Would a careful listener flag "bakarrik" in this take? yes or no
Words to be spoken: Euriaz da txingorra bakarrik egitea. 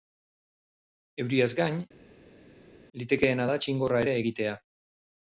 yes